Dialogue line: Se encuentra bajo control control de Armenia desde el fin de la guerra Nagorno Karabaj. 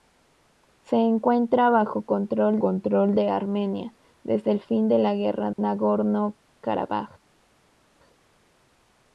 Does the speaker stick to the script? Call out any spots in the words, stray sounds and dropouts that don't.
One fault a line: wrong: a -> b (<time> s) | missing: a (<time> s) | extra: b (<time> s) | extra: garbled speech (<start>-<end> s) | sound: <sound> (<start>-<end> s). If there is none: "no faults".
no faults